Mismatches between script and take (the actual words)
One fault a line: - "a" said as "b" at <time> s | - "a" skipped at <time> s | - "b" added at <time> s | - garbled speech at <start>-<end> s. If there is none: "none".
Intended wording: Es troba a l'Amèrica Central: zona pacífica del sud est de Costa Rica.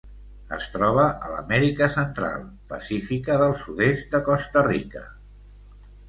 - "zona" skipped at 2.5 s